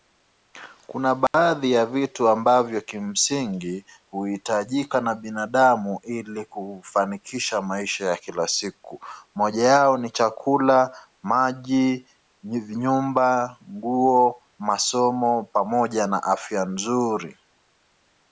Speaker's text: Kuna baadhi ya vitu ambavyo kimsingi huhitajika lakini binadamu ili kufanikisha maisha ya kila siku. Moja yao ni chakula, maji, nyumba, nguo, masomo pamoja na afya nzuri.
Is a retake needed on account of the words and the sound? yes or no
yes